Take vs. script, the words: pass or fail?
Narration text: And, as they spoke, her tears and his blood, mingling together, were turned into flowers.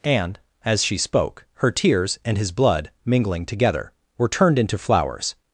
fail